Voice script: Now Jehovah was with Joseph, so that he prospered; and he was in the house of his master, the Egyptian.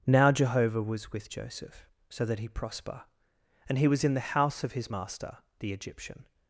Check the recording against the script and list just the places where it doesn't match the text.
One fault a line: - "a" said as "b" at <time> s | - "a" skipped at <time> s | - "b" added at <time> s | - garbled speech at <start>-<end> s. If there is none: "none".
- "prospered" said as "prosper" at 2.5 s